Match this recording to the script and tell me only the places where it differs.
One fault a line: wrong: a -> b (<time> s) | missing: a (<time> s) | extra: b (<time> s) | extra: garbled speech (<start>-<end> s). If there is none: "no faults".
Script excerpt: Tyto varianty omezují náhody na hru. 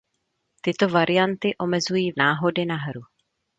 no faults